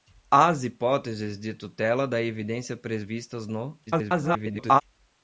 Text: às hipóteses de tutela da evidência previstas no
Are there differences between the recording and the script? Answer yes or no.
yes